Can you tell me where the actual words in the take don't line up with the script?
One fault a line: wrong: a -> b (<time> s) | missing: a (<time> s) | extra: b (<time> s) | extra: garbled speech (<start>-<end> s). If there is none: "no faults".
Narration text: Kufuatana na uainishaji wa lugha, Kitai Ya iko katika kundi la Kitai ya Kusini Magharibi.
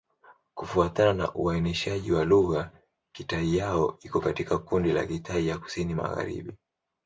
no faults